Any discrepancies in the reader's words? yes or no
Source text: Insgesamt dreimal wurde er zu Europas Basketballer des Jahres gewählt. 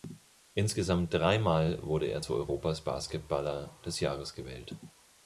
no